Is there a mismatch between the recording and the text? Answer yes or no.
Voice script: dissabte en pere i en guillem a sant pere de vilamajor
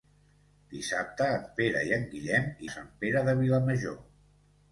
no